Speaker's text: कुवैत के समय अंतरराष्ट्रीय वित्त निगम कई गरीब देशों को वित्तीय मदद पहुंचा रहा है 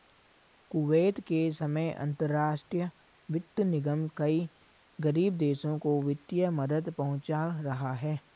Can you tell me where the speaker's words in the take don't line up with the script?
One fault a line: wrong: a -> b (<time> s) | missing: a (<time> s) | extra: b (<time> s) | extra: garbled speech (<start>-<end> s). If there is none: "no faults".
no faults